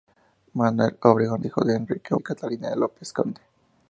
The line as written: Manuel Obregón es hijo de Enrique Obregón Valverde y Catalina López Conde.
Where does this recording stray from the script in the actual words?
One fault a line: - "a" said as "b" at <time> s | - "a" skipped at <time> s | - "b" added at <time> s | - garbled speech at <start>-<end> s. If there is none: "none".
- "es" skipped at 1.4 s
- "Obregón Valverde" skipped at 2.1 s